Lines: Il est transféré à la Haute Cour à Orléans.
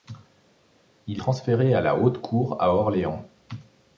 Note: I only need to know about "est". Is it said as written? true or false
false